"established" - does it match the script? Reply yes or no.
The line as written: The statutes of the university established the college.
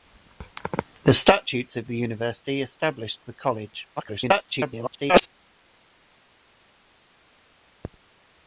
yes